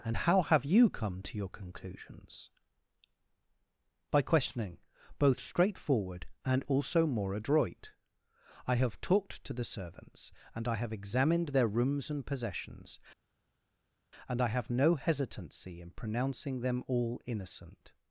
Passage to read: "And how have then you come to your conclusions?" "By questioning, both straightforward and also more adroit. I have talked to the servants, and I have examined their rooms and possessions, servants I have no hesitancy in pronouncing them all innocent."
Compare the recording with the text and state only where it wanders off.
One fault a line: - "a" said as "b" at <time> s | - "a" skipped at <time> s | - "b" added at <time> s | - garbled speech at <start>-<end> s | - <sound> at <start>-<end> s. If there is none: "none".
- "then" skipped at 0.7 s
- "servants" said as "and" at 14.3 s